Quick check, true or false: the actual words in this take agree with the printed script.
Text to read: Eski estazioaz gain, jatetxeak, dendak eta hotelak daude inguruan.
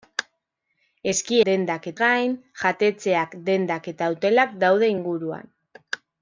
false